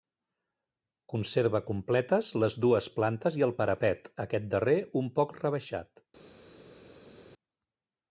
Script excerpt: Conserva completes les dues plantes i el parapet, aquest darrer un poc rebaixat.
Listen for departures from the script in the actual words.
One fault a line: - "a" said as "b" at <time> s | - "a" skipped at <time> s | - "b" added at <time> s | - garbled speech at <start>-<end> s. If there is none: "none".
none